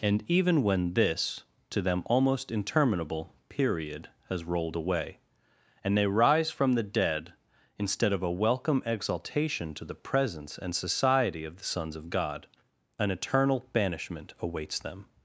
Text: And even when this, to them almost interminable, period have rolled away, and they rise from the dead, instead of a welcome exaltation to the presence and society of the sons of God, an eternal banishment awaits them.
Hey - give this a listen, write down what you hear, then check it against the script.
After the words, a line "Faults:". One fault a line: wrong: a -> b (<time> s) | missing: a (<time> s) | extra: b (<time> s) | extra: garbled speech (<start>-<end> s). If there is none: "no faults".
And even when this, to them almost interminable, period has rolled away, and they rise from the dead, instead of a welcome exaltation to the presence and society of the sons of God, an eternal banishment awaits them.
Faults:
wrong: have -> has (4.3 s)